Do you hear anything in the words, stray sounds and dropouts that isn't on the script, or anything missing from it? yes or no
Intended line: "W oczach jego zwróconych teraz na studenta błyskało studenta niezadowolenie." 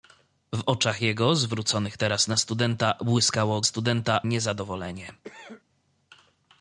yes